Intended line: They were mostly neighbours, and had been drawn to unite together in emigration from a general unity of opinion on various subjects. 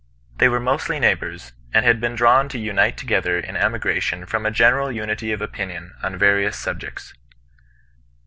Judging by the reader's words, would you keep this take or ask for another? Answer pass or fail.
pass